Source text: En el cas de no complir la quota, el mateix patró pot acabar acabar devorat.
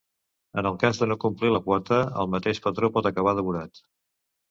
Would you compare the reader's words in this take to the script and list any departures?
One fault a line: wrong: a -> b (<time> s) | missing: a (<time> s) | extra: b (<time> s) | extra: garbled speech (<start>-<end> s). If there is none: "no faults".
missing: acabar (3.4 s)